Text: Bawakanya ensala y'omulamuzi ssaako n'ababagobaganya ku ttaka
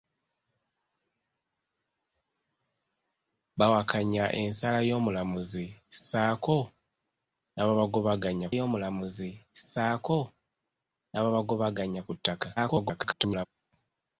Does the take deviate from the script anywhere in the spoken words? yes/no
yes